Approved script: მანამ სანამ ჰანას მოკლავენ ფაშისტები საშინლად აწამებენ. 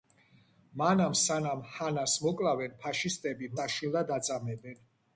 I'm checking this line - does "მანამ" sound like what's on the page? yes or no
yes